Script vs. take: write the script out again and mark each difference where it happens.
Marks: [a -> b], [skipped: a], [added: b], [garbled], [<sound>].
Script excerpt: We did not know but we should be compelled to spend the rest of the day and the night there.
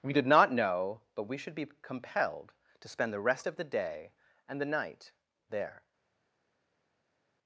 We did not know but we should be compelled to spend the rest of the day and the night there.